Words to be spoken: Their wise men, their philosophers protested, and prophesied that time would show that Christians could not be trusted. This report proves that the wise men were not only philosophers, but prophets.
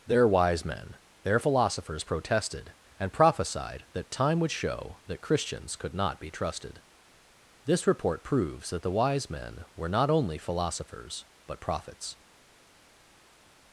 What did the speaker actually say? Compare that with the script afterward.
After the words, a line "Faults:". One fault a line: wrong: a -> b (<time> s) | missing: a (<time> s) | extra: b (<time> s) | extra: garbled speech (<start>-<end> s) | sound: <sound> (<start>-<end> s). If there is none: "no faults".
Their wise men, their philosophers protested, and prophesied that time would show that Christians could not be trusted. This report proves that the wise men were not only philosophers, but prophets.
Faults:
no faults